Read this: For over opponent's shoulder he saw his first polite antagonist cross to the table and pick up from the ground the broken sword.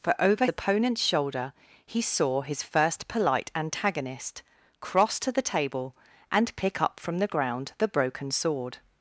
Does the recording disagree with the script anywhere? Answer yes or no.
no